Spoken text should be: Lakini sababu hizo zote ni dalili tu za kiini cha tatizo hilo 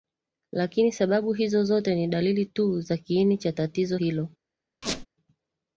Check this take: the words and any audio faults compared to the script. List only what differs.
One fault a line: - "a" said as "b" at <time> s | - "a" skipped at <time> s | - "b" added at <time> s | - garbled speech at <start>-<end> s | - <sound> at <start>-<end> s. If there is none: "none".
- squeak at 4.8-5.1 s